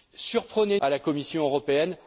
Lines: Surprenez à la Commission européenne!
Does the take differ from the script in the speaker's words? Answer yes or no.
no